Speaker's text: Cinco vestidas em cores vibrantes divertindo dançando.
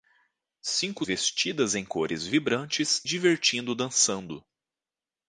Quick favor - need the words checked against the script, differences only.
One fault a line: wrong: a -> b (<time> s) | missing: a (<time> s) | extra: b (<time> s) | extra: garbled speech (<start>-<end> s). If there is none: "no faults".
no faults